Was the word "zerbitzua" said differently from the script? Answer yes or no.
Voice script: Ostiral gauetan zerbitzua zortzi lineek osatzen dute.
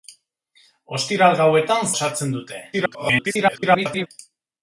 yes